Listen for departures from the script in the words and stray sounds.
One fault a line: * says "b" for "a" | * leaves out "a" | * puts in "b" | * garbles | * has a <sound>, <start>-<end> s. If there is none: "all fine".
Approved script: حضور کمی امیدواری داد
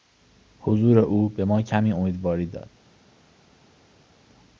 * puts in "او به ما"